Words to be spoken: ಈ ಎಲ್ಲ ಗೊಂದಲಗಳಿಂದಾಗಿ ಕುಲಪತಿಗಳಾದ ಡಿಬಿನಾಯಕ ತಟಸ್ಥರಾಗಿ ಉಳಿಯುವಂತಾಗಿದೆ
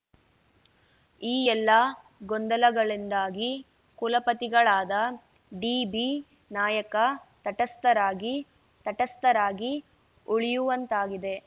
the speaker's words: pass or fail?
fail